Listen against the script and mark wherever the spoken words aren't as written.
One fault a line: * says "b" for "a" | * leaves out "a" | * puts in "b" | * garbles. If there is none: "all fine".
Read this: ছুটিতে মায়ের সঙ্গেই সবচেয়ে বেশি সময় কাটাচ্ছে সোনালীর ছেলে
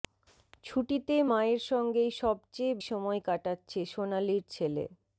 * leaves out "বেশি"